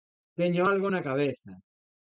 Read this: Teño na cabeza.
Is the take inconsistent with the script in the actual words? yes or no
yes